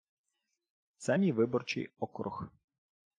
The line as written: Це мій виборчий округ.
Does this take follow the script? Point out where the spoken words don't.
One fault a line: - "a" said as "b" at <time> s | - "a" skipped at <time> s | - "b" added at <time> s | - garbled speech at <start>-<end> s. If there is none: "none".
none